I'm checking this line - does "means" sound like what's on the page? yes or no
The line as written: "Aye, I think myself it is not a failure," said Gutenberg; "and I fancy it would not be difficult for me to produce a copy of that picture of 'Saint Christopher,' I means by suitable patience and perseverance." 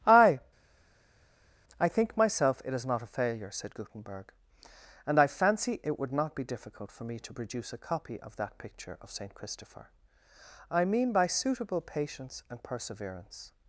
no